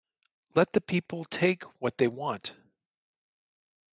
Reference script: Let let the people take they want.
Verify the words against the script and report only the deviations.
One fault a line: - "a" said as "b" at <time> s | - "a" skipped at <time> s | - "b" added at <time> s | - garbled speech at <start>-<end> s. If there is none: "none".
- "let" skipped at 0.7 s
- "what" added at 1.8 s